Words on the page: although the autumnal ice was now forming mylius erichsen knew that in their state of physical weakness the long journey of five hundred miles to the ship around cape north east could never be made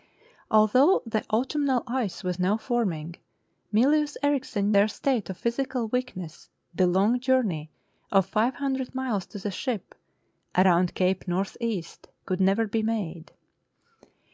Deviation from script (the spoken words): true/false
true